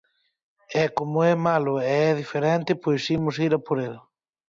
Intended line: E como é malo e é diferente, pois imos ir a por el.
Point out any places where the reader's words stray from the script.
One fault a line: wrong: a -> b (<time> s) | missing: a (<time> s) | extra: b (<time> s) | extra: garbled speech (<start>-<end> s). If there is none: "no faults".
no faults